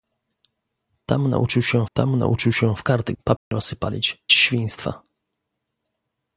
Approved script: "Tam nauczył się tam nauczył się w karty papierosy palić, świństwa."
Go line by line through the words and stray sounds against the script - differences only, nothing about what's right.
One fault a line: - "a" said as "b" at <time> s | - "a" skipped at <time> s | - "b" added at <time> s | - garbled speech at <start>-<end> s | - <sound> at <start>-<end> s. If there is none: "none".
- dropout at 3.4-3.5 s